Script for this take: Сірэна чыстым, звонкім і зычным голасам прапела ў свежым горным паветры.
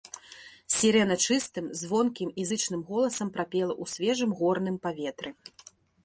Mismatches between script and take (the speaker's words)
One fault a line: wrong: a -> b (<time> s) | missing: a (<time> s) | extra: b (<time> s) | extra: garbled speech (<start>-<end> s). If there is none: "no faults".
no faults